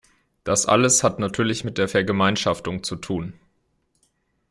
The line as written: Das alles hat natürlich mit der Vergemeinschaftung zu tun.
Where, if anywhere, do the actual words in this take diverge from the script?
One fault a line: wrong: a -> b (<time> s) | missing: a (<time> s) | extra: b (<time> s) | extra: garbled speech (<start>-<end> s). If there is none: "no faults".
no faults